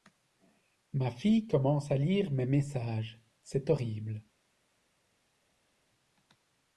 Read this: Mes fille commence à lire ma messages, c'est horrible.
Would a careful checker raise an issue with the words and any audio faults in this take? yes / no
yes